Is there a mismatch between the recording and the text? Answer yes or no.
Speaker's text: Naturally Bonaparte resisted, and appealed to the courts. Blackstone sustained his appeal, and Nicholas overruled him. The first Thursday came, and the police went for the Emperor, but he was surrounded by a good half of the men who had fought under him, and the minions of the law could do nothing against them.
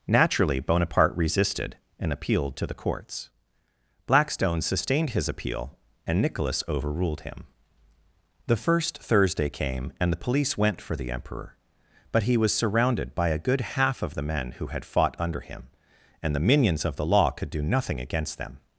no